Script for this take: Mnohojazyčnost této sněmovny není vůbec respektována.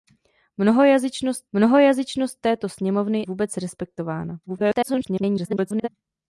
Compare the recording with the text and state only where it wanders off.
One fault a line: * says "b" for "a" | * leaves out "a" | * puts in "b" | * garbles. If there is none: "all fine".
* puts in "mnohojazyčnost"
* leaves out "není"
* garbles